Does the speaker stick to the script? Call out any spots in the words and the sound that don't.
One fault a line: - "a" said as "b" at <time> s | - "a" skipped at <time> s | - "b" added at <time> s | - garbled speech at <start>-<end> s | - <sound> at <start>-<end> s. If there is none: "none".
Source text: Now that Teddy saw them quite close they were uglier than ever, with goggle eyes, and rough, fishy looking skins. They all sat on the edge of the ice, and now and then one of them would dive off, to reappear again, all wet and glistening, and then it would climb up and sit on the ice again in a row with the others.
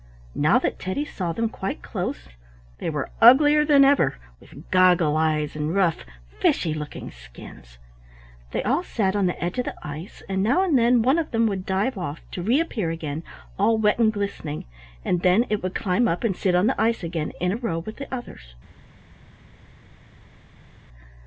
none